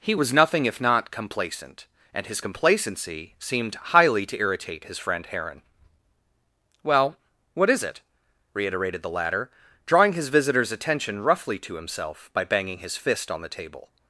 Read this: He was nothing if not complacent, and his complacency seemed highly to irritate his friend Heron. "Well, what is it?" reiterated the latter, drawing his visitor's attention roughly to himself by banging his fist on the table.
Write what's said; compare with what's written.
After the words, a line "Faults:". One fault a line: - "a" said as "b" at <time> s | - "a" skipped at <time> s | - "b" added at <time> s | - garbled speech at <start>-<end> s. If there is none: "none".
He was nothing if not complacent, and his complacency seemed highly to irritate his friend Heron. "Well, what is it?" reiterated the latter, drawing his visitor's attention roughly to himself by banging his fist on the table.
Faults:
none